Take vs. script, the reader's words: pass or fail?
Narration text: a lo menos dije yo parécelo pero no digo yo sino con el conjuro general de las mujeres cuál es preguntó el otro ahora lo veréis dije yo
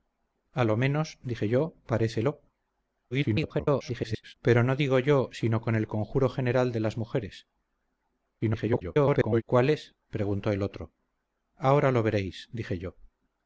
fail